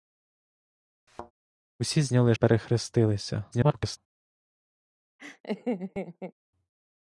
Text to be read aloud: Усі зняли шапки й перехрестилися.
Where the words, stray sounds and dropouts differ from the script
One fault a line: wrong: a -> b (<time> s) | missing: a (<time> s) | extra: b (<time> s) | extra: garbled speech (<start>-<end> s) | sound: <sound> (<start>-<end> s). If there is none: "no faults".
sound: thud (1.1-1.3 s)
missing: шапки (2.3 s)
extra: garbled speech (3.5-4.0 s)
sound: laugh (5.2-6.3 s)